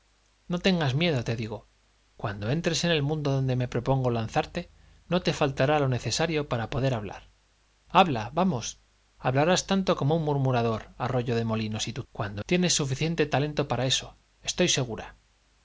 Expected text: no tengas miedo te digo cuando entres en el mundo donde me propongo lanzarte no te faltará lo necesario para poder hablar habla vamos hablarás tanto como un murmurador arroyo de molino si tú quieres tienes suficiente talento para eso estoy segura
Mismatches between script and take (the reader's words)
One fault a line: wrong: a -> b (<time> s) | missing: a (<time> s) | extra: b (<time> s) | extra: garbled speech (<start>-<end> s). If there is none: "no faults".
wrong: quieres -> cuando (12.1 s)